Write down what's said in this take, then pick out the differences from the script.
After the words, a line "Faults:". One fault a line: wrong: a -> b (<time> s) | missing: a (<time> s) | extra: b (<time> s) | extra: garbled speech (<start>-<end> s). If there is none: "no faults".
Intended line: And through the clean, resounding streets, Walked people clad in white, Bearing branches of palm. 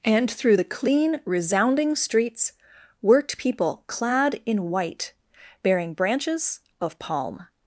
And through the clean, resounding streets, Worked people clad in white, Bearing branches of palm.
Faults:
wrong: Walked -> Worked (3.0 s)